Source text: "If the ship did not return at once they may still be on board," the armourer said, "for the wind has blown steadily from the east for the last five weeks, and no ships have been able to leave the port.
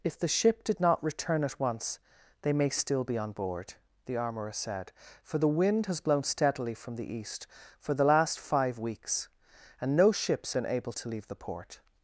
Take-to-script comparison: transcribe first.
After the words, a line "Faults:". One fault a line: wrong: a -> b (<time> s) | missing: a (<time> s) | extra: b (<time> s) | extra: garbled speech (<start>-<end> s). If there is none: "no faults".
"If the ship did not return at once they may still be on board," the armourer said, "for the wind has blown steadily from the east for the last five weeks, and no ships been able to leave the port.
Faults:
missing: have (10.6 s)